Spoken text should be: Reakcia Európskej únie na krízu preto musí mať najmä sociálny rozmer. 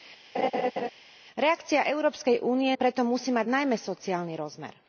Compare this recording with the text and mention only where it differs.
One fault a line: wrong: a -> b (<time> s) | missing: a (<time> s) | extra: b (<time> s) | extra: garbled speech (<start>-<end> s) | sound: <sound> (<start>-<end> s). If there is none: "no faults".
sound: laugh (0.3-0.9 s)
missing: na krízu (2.8 s)